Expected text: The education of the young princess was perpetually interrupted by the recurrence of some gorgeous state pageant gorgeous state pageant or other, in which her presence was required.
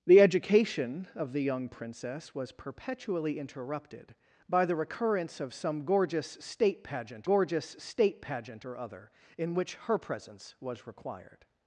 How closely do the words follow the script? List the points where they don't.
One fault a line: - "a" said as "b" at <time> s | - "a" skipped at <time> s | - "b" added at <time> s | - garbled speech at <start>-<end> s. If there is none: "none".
none